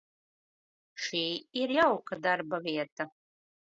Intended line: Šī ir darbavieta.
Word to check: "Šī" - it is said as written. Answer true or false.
true